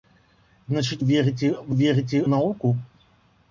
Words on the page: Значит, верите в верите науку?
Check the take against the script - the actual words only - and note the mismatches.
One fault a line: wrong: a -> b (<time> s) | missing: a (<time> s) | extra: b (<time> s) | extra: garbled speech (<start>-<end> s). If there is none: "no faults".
no faults